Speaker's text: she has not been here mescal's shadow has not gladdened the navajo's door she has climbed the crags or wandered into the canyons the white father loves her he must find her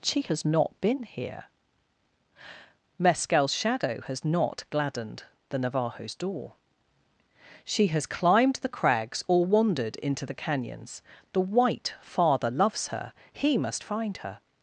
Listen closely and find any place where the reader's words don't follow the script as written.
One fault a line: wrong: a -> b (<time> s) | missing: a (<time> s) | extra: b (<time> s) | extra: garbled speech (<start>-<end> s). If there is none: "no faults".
no faults